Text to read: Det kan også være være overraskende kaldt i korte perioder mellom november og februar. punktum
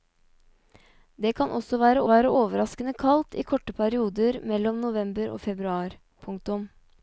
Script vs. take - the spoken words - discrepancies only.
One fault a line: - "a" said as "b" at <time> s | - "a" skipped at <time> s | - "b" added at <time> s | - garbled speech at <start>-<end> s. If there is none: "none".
none